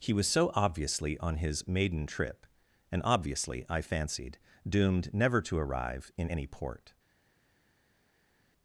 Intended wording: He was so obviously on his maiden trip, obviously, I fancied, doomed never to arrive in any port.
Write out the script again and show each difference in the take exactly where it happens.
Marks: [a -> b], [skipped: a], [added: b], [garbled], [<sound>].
He was so obviously on his maiden trip, [added: and] obviously, I fancied, doomed never to arrive in any port.